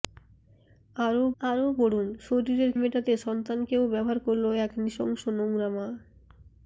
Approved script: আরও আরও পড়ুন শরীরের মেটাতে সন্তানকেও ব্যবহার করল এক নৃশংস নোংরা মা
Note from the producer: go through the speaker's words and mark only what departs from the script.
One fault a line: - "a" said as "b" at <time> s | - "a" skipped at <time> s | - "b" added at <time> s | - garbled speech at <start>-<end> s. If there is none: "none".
none